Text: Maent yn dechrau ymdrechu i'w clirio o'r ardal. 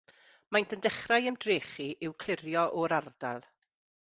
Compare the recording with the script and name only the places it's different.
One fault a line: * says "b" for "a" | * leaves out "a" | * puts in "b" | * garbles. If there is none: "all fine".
all fine